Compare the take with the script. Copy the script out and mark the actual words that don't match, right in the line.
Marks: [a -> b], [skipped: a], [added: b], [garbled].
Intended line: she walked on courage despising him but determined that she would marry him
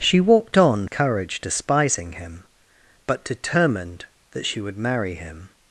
she walked on courage despising him but determined that she would marry him